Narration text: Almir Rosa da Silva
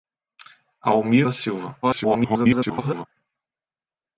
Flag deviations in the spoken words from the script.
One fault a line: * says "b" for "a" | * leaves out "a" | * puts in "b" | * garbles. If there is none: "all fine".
* leaves out "Rosa"
* garbles